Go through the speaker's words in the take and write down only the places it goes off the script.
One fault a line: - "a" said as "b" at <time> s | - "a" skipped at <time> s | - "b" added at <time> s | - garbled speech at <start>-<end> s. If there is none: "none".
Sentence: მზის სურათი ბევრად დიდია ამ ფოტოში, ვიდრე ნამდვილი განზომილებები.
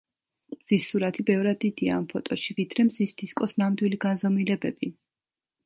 - "მზის დისკოს" added at 2.9 s